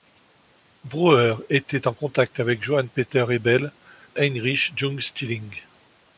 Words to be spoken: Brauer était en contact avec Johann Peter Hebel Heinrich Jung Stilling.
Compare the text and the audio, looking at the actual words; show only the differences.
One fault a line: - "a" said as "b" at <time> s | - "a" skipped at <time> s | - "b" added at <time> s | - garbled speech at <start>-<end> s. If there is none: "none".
none